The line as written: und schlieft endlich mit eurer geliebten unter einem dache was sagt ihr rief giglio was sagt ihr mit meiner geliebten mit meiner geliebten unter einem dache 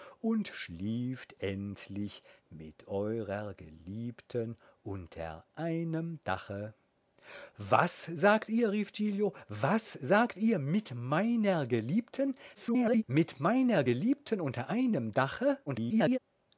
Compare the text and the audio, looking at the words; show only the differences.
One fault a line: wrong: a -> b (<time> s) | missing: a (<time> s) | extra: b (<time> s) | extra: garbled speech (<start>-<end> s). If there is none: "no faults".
extra: garbled speech (12.5-13.0 s)
extra: garbled speech (15.7-16.2 s)